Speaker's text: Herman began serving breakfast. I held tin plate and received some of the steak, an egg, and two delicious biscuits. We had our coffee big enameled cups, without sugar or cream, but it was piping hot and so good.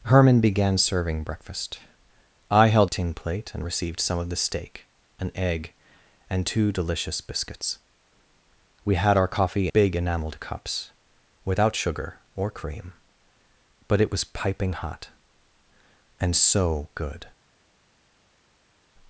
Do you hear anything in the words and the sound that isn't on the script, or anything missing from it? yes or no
no